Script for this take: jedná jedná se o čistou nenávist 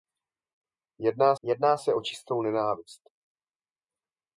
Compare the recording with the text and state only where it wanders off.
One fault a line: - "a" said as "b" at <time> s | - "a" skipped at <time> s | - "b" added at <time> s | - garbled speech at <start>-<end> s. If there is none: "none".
none